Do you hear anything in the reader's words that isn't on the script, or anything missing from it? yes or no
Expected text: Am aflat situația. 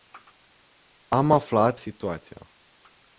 no